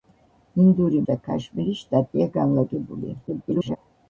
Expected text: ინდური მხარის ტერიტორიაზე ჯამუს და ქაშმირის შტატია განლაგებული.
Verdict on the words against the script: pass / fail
fail